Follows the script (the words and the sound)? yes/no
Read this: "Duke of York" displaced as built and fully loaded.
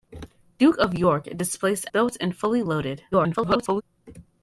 no